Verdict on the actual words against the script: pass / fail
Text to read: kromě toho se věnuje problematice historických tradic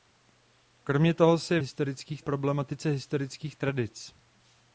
fail